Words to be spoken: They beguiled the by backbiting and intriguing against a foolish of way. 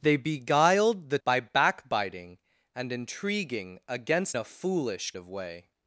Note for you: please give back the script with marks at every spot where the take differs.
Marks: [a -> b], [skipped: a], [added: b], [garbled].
They beguiled the by backbiting and intriguing against a foolish of way.